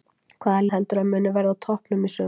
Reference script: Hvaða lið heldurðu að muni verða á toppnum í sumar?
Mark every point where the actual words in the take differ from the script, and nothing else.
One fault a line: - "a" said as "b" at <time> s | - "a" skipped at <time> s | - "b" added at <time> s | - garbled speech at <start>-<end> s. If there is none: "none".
- "lið" skipped at 0.6 s